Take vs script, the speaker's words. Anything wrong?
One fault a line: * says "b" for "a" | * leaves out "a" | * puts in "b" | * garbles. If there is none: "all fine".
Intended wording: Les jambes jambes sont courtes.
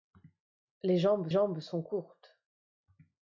all fine